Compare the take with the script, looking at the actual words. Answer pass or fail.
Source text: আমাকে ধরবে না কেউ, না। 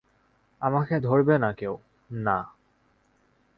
pass